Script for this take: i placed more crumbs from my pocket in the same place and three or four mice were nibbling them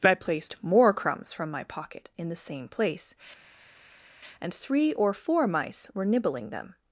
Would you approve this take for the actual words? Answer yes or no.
yes